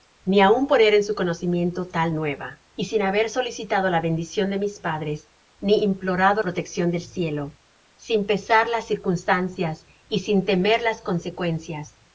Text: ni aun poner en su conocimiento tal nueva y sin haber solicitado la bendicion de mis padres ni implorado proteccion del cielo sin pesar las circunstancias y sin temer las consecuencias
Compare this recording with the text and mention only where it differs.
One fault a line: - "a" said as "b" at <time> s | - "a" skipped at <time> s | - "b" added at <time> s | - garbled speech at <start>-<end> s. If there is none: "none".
none